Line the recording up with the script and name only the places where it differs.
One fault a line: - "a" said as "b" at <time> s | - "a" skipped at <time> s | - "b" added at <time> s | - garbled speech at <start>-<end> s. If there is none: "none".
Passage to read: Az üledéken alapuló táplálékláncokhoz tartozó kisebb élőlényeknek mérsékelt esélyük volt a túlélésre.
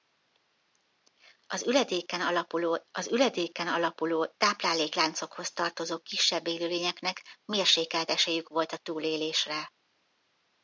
- "az üledéken alapuló" added at 2.9 s